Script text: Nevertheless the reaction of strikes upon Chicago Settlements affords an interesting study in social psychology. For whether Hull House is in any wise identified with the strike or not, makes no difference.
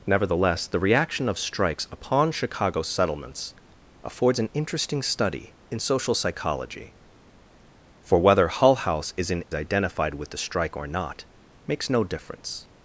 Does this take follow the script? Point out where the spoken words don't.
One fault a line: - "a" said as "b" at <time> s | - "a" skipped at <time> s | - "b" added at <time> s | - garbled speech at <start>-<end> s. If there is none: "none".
- "any wise" skipped at 9.4 s